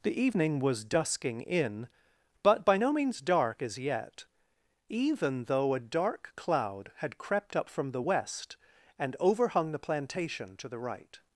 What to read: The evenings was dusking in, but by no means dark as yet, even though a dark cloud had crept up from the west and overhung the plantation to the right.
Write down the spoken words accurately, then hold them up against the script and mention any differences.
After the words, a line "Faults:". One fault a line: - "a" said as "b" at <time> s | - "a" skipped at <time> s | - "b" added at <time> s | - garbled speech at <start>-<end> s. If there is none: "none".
The evening was dusking in, but by no means dark as yet, even though a dark cloud had crept up from the west and overhung the plantation to the right.
Faults:
- "evenings" said as "evening" at 0.2 s